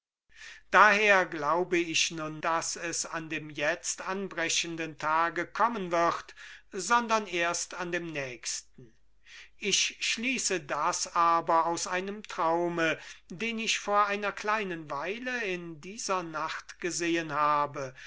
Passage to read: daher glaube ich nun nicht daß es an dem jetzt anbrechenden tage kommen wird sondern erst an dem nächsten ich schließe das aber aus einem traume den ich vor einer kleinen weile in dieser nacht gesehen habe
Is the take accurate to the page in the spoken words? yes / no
no